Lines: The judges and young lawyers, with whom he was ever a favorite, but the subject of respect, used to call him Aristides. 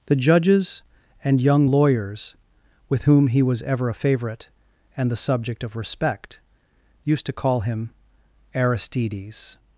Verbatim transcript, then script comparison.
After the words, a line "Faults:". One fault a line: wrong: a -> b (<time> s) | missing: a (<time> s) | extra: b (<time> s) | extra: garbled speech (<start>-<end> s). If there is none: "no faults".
The judges and young lawyers, with whom he was ever a favorite, and the subject of respect, used to call him Aristides.
Faults:
wrong: but -> and (5.0 s)